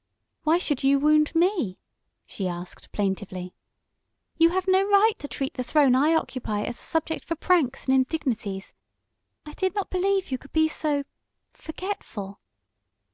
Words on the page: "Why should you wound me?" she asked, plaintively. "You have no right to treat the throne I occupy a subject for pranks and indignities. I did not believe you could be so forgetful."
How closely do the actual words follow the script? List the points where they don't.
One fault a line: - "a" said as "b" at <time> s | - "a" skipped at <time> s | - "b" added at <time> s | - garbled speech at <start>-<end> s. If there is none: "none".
- "as" added at 6.6 s